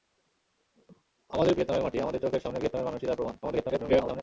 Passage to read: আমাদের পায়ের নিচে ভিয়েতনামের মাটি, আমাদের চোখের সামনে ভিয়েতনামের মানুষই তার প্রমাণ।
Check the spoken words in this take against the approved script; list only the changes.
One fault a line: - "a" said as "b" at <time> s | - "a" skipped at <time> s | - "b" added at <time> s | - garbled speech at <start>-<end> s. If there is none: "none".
- "পায়ের নিচে" skipped at 1.5 s
- garbled speech at 3.4-4.2 s